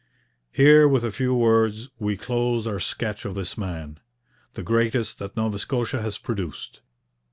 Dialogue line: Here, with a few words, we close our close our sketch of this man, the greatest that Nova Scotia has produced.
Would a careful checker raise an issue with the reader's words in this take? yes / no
yes